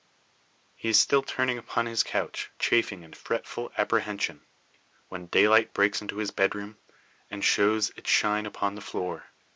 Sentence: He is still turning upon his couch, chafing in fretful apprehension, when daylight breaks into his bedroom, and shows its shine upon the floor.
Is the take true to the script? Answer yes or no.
yes